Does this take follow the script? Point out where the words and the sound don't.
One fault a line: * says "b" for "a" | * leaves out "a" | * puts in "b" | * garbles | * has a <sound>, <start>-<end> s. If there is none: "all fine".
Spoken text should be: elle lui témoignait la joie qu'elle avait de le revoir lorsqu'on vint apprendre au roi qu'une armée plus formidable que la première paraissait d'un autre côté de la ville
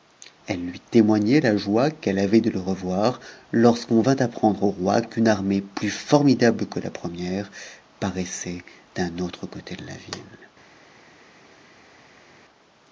all fine